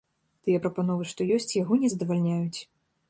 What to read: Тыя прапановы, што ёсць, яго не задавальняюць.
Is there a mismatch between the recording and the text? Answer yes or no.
no